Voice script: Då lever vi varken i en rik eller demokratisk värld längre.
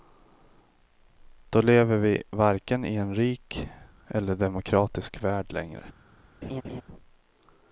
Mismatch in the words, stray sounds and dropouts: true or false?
true